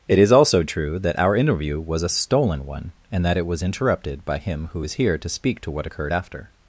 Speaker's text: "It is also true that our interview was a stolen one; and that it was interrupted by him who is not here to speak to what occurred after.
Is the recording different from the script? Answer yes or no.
yes